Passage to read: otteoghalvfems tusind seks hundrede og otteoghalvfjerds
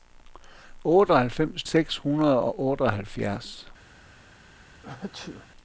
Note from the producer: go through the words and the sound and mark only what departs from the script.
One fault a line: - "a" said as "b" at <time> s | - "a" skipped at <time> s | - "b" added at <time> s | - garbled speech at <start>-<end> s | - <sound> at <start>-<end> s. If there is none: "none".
- "tusind" skipped at 1.6 s
- sneeze at 4.8-5.5 s